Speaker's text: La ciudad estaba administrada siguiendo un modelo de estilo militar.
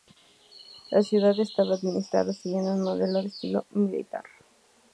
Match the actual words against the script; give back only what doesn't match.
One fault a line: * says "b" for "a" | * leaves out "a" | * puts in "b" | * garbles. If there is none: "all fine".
all fine